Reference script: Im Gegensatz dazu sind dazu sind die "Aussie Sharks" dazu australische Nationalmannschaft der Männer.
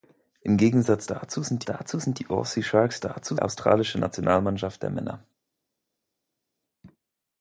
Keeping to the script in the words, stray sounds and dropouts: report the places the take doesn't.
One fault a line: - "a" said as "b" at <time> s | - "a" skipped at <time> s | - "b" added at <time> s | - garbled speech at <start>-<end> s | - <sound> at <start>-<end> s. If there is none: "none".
none